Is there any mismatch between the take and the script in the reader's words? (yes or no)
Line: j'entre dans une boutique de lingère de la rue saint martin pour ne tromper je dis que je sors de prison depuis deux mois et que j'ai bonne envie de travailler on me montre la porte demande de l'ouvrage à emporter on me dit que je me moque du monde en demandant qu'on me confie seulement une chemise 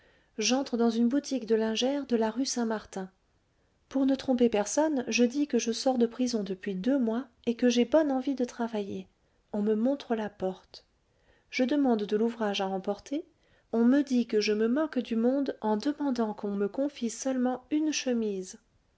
yes